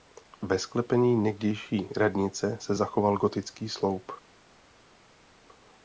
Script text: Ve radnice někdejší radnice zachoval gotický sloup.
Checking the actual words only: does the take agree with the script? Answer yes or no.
no